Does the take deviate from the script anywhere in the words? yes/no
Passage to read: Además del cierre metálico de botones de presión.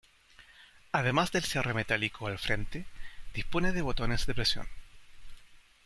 yes